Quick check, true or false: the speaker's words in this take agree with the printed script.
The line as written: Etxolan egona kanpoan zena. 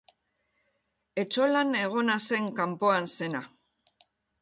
false